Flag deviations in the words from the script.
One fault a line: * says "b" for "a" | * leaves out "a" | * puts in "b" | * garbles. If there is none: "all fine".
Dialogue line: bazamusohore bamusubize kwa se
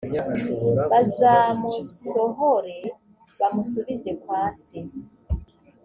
all fine